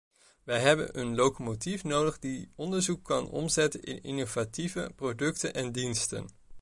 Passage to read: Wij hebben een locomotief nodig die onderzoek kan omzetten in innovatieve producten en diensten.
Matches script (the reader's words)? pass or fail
pass